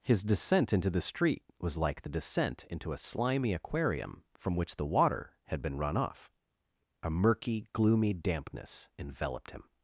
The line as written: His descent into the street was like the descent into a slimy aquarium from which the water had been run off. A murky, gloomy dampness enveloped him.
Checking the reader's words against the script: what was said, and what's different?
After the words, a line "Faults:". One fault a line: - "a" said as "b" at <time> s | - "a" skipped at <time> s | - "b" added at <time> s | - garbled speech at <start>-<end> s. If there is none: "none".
His descent into the street was like the descent into a slimy aquarium from which the water had been run off. A murky, gloomy dampness enveloped him.
Faults:
none